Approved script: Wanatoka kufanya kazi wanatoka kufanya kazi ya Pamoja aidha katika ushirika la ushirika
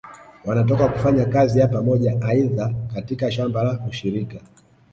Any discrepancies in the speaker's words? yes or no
yes